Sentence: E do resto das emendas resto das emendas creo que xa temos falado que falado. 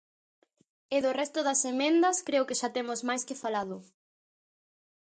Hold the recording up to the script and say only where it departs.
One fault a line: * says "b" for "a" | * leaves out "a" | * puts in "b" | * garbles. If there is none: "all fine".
* leaves out "resto das emendas"
* says "máis" for "falado"